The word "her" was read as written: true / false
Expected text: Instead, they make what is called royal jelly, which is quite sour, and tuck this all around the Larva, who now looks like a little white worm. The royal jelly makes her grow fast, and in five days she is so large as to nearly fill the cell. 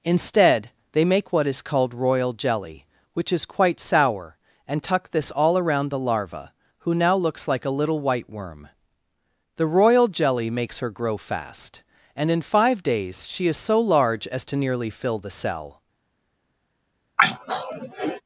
true